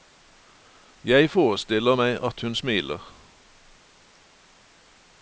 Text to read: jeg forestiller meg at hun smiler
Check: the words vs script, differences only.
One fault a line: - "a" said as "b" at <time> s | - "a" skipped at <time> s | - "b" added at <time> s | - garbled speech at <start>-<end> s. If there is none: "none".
none